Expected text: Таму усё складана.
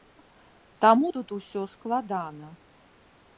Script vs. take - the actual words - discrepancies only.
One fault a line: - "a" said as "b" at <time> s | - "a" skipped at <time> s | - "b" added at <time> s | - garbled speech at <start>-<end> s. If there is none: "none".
- "тут" added at 1.2 s